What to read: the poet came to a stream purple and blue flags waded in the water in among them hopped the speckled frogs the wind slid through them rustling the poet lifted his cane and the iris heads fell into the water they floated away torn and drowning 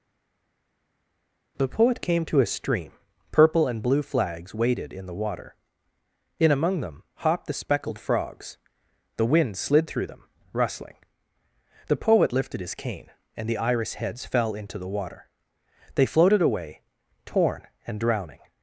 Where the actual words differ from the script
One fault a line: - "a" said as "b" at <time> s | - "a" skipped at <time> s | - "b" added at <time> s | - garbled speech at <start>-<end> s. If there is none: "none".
none